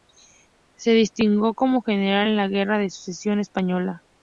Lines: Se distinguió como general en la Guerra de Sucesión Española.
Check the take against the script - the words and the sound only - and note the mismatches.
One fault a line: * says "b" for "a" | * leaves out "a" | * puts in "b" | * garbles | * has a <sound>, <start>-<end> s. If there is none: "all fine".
all fine